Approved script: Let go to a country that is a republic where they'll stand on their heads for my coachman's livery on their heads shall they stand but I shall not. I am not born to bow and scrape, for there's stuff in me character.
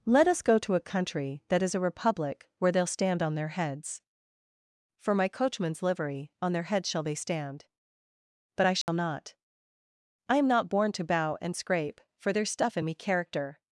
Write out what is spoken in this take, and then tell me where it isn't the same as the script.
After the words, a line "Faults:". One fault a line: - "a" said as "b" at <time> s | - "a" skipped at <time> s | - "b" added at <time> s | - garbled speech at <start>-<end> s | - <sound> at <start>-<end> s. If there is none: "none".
Let us go to a country that is a republic where they'll stand on their heads for my coachman's livery on their heads shall they stand but I shall not. I am not born to bow and scrape, for there's stuff in me character.
Faults:
- "us" added at 0.3 s
- dropout at 8.8-8.9 s